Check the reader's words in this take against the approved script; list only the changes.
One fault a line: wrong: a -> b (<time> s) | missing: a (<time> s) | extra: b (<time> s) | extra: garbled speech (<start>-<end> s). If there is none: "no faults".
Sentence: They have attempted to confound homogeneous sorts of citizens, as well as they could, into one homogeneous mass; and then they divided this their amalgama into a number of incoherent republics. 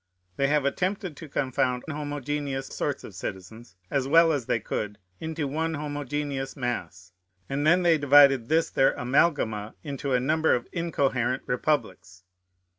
no faults